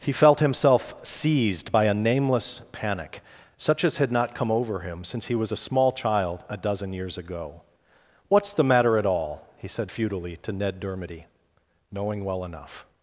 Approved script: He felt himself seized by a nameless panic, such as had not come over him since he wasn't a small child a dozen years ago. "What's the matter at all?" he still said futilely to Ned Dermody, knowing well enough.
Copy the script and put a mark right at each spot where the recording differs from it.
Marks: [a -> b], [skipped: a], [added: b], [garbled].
He felt himself seized by a nameless panic, such as had not come over him since he [wasn't -> was] a small child a dozen years ago. "What's the matter at all?" he [skipped: still] said futilely to Ned Dermody, knowing well enough.